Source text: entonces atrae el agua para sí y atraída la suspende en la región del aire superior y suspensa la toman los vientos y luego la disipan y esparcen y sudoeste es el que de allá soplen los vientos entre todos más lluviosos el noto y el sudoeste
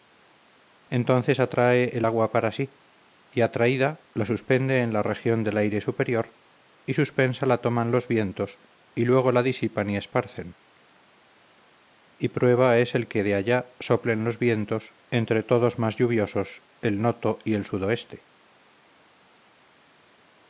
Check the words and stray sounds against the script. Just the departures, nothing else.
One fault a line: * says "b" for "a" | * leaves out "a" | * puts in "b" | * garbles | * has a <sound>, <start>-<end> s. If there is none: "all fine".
* says "prueba" for "sudoeste"